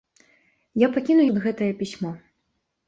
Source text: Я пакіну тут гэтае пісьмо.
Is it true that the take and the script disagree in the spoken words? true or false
false